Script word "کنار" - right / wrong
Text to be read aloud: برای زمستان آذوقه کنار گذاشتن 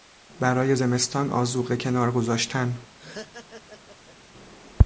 right